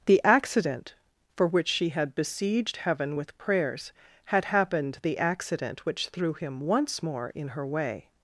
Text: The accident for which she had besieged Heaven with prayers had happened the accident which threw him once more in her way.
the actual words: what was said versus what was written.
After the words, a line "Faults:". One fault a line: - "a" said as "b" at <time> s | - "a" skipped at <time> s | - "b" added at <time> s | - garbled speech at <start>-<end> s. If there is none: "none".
The accident for which she had besieged Heaven with prayers had happened the accident which threw him once more in her way.
Faults:
none